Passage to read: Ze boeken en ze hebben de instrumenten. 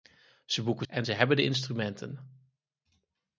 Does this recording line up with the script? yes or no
yes